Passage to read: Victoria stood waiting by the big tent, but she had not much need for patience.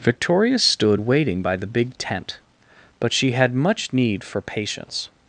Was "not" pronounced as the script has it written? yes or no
no